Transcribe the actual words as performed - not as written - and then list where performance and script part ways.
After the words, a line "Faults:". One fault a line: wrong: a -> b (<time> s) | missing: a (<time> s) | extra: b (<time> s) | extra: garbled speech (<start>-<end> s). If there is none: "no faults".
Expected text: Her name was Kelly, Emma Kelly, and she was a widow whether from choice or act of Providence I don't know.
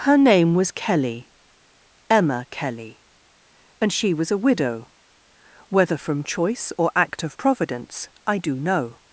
Her name was Kelly, Emma Kelly, and she was a widow whether from choice or act of Providence I do know.
Faults:
wrong: don't -> do (8.4 s)